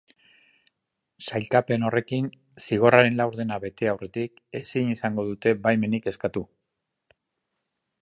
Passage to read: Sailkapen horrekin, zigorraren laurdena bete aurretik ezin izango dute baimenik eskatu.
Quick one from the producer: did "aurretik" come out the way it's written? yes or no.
yes